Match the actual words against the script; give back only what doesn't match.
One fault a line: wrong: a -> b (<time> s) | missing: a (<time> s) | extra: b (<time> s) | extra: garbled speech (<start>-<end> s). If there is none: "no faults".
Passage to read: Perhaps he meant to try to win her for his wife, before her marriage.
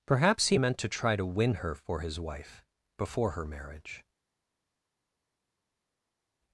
no faults